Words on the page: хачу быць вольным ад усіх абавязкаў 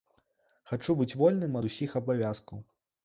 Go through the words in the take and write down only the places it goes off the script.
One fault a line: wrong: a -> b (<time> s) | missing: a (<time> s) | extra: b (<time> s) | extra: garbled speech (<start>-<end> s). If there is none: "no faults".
no faults